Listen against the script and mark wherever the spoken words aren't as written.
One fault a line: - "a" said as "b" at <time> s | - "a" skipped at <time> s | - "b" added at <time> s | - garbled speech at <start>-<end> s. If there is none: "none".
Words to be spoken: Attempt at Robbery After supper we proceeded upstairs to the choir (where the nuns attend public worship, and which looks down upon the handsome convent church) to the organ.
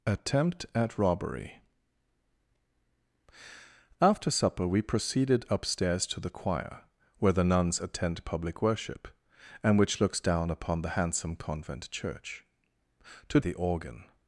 none